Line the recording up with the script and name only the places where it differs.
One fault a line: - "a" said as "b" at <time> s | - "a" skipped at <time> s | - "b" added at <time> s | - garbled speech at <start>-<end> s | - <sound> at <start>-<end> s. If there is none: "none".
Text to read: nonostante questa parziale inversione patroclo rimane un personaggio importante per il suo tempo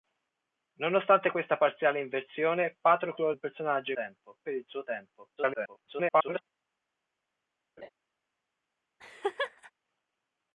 - "rimane" skipped at 3.3 s
- "importante" said as "tempo" at 3.9 s
- garbled speech at 5.4-6.4 s
- laugh at 7.8-7.9 s
- laugh at 9.0-9.7 s